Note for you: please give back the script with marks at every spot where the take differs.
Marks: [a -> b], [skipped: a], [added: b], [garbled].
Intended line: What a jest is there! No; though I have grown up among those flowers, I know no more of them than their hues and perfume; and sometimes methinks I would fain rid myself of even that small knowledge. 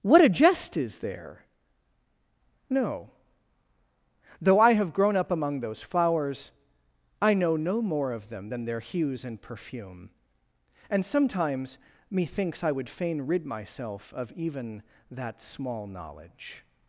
What a jest is there! No; though I have grown up among those flowers, I know no more of them than their hues and perfume; and sometimes methinks I would fain rid myself of even that small knowledge.